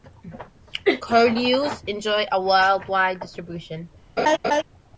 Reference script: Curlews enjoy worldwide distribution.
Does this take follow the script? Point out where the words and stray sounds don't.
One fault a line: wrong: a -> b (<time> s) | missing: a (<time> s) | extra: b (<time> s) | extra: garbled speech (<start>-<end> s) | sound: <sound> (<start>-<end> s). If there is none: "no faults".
extra: a (2.3 s)
sound: laugh (4.2-4.6 s)